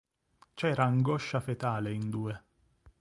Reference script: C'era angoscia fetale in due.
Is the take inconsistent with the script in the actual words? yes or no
no